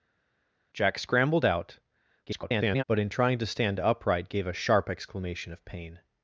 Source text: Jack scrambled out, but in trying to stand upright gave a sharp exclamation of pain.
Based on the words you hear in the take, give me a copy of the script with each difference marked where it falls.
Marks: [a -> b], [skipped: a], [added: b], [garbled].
Jack scrambled out, [garbled] but in trying to stand upright gave a sharp exclamation of pain.